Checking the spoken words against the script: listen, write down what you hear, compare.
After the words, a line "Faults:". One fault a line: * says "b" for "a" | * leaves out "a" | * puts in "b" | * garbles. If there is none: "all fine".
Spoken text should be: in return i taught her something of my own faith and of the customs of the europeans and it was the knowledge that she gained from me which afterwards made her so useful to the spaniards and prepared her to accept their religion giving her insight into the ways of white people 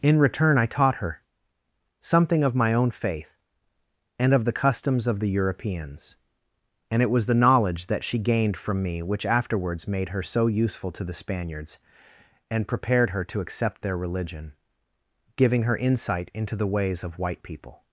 in return i taught her something of my own faith and of the customs of the europeans and it was the knowledge that she gained from me which afterwards made her so useful to the spaniards and prepared her to accept their religion giving her insight into the ways of white people
Faults:
all fine